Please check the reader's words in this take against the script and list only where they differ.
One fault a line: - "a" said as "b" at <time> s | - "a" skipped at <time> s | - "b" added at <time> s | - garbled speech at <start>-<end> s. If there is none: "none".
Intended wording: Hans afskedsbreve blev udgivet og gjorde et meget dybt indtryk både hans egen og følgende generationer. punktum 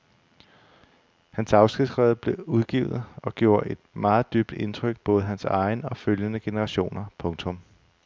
none